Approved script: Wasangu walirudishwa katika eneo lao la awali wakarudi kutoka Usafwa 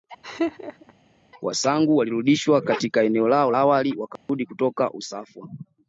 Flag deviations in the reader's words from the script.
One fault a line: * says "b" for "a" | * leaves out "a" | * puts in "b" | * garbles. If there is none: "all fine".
* leaves out "la"